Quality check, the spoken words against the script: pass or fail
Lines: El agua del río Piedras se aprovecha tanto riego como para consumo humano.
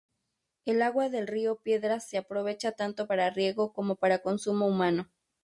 fail